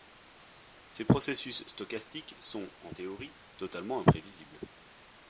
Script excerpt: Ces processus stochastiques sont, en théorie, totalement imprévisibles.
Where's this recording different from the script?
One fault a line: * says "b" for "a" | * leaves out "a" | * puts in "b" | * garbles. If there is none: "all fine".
all fine